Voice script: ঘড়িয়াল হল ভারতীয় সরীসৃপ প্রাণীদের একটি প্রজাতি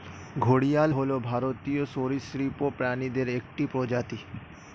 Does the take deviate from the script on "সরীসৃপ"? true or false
false